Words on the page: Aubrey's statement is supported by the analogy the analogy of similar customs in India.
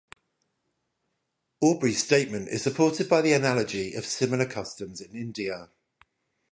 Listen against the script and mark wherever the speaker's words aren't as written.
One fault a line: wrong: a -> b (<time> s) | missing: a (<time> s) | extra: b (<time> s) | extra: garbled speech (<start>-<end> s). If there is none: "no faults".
missing: the analogy (4.0 s)